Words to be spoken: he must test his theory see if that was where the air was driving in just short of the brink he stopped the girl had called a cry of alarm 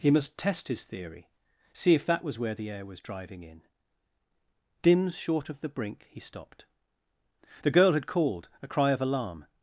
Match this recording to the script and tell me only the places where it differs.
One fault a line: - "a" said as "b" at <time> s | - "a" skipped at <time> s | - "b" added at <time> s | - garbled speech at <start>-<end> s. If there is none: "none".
- "just" said as "dims" at 4.8 s